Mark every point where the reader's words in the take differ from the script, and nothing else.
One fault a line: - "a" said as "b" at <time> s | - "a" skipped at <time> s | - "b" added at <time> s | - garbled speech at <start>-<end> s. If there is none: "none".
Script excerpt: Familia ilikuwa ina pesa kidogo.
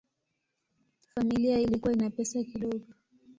none